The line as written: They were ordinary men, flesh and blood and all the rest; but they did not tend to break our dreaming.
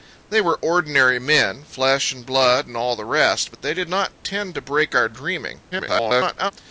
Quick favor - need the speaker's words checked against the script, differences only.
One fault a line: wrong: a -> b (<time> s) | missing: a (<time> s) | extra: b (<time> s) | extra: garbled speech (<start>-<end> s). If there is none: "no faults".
extra: garbled speech (5.7-6.5 s)